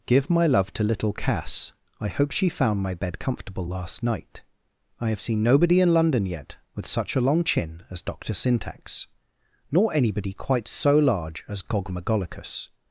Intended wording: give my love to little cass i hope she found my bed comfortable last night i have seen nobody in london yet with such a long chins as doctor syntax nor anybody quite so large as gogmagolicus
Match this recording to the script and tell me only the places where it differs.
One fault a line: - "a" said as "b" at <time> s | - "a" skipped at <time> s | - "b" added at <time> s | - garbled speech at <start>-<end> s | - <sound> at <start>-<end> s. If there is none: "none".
- "chins" said as "chin" at 7.4 s